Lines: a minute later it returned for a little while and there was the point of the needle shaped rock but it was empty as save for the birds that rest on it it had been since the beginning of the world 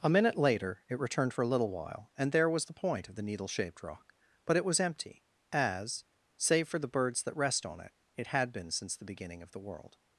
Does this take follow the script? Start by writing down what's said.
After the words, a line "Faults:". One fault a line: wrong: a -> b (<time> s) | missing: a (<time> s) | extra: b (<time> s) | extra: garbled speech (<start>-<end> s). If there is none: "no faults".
a minute later it returned for a little while and there was the point of the needle shaped rock but it was empty as save for the birds that rest on it it had been since the beginning of the world
Faults:
no faults